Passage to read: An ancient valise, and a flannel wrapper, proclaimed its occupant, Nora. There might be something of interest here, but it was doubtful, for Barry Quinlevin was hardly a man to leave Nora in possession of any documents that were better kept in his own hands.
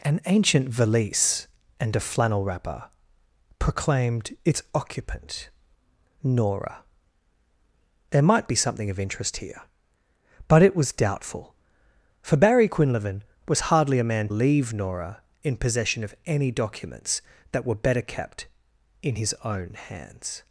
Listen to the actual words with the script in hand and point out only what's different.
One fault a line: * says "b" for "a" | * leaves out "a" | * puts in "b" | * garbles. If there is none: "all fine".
* leaves out "to"